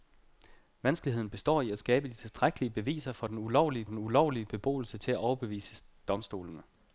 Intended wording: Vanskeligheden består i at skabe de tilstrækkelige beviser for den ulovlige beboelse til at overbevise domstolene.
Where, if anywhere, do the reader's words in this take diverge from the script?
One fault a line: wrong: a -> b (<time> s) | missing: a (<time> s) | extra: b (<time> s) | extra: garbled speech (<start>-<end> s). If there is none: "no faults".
extra: den ulovlige (3.9 s)